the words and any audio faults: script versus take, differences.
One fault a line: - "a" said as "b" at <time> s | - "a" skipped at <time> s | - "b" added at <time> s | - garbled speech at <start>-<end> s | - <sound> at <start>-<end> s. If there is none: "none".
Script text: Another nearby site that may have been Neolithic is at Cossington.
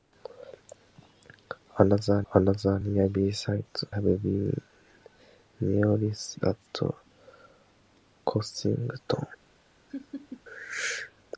- "another" added at 2.3 s
- "that may" skipped at 3.8 s
- "is" skipped at 6.4 s
- laugh at 9.9-10.4 s